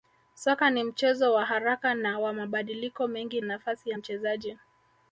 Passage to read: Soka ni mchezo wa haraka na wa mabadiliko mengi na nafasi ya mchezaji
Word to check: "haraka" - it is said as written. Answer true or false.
true